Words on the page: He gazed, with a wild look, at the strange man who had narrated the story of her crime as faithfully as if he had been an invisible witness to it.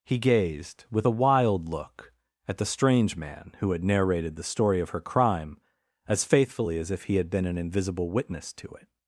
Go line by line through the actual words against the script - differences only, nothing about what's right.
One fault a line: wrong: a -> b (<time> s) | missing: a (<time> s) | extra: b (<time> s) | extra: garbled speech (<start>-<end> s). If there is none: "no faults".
no faults